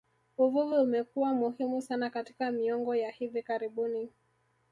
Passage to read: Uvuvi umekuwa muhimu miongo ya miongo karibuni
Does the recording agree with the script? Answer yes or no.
no